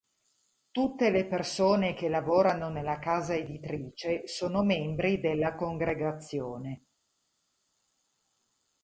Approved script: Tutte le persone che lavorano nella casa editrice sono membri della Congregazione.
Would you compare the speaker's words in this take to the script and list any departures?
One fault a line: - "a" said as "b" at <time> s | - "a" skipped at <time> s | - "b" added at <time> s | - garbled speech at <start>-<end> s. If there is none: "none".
none